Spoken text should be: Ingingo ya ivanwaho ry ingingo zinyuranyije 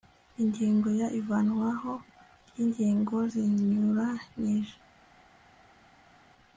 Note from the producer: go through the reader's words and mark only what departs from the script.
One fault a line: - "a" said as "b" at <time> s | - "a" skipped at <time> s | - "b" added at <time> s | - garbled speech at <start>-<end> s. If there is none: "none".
none